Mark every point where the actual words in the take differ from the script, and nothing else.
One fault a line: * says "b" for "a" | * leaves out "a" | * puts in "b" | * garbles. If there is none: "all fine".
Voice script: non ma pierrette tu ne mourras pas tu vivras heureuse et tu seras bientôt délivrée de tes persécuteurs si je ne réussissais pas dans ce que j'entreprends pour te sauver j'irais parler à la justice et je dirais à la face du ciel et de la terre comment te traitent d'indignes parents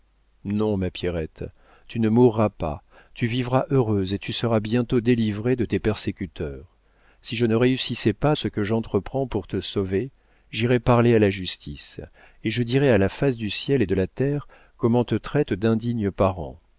* leaves out "dans"